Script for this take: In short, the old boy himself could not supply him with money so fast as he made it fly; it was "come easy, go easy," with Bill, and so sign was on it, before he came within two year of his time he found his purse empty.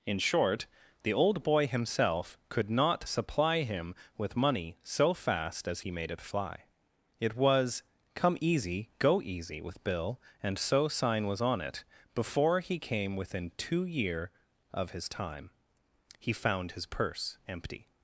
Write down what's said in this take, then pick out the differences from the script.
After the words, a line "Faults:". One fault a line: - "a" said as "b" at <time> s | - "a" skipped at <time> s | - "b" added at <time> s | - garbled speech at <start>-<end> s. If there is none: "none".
In short, the old boy himself could not supply him with money so fast as he made it fly; it was "come easy, go easy," with Bill, and so sign was on it, before he came within two year of his time he found his purse empty.
Faults:
none